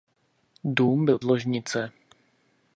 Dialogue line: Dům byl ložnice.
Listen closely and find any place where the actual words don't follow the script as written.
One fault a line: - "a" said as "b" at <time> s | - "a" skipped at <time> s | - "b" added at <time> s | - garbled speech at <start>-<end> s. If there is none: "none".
none